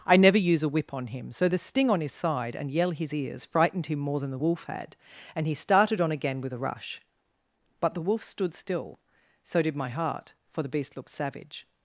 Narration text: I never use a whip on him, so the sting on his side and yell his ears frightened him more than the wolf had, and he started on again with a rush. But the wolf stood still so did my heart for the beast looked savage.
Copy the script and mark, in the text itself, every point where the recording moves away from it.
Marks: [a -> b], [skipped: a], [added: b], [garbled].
I never use a whip on him, so the sting on his side and yell his ears frightened him more than the wolf had, and he started on again with a rush. But the wolf stood still so did my heart for the beast looked savage.